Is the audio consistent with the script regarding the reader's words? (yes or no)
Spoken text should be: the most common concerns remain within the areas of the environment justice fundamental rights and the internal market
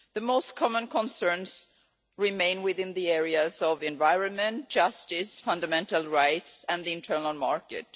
yes